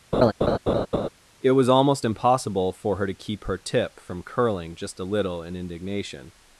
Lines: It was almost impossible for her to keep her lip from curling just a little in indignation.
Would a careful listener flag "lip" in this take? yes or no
yes